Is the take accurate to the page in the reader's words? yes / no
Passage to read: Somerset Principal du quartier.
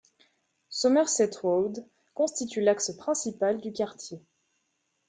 no